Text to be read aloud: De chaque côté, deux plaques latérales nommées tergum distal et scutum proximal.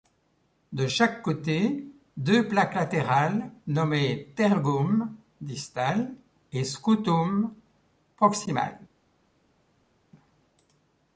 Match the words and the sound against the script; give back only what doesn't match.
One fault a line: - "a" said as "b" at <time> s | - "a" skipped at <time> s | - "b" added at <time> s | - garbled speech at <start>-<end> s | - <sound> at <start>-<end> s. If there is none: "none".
none